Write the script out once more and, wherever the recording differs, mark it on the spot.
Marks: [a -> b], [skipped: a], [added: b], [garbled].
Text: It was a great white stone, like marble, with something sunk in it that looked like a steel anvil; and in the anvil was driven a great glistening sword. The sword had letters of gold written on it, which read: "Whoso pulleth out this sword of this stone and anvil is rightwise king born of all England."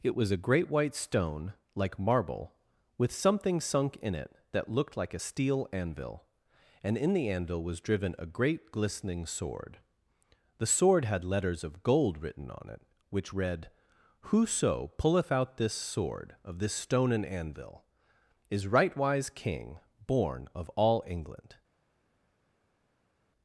It was a great white stone, like marble, with something sunk in it that looked like a steel anvil; and in the anvil was driven a great glistening sword. The sword had letters of gold written on it, which read: "Whoso pulleth out this sword of this stone and anvil is rightwise king born of all England."